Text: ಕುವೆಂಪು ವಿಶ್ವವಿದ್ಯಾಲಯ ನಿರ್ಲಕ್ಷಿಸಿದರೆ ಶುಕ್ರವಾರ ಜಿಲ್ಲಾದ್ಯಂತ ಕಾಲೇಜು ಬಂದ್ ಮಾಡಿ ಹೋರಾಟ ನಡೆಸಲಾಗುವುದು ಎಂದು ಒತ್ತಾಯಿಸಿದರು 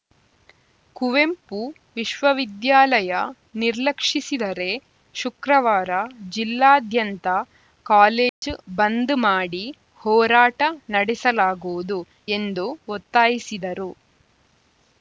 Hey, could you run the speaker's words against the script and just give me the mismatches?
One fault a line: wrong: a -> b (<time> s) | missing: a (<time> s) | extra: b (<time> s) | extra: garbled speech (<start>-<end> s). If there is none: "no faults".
no faults